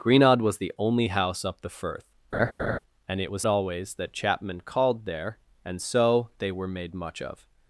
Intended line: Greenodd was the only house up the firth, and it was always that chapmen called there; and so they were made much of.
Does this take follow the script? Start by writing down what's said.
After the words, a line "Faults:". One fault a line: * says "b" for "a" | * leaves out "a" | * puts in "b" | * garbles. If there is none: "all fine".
Greenodd was the only house up the firth, and it was always that chapmen called there; and so they were made much of.
Faults:
all fine